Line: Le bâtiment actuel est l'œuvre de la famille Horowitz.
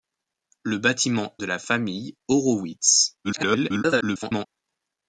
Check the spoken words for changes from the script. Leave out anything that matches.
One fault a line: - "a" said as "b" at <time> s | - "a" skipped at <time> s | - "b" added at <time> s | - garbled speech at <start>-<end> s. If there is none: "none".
- "actuel est l'œuvre" skipped at 1.4 s
- garbled speech at 3.2-4.5 s